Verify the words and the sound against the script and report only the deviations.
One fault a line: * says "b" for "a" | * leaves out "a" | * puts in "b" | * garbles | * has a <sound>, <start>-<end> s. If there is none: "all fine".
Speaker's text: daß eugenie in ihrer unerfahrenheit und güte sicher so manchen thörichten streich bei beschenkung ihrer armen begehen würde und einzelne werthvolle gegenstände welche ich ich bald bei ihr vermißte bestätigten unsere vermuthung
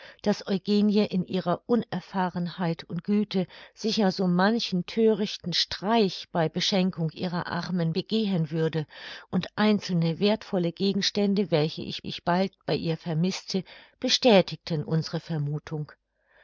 all fine